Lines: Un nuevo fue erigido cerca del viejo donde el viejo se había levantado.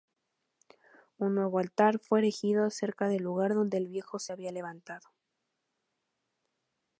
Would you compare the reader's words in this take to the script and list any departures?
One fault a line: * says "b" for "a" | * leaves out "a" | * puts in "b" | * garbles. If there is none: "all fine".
* puts in "altar"
* says "lugar" for "viejo"